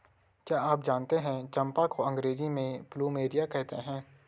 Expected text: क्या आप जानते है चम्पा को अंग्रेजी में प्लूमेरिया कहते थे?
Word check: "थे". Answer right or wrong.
wrong